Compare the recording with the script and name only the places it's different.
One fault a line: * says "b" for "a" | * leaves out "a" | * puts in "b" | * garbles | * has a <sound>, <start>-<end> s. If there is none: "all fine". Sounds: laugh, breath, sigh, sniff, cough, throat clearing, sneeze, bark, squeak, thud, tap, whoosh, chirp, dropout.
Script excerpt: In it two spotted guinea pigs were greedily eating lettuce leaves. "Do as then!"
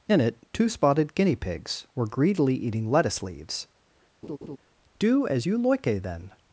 * has a laugh, 4.2-4.6 s
* puts in "you loike"